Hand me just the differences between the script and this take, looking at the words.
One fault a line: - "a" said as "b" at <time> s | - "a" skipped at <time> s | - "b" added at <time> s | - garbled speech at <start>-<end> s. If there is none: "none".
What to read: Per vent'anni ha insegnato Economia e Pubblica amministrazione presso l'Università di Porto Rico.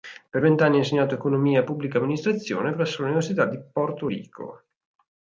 none